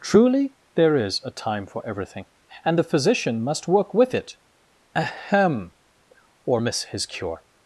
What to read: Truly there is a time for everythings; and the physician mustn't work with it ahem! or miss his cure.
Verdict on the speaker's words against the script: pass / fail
fail